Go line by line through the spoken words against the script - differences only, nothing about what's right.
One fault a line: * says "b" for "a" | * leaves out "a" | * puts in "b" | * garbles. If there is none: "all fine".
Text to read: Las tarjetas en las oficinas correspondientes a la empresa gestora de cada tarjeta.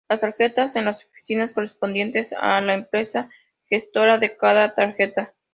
all fine